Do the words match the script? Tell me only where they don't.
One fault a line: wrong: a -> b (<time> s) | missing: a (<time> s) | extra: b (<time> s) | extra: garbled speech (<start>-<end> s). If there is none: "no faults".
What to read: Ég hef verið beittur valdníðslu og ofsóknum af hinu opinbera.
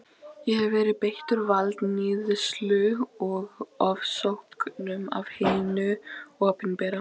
no faults